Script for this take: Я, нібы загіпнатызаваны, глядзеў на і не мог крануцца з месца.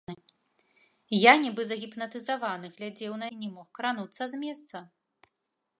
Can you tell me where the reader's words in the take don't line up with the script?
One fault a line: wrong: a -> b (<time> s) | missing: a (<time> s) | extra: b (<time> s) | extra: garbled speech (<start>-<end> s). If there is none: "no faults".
no faults